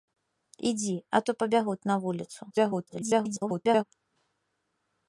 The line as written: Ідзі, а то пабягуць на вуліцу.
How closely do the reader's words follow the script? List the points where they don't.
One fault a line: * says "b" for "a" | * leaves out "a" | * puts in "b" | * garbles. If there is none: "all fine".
* garbles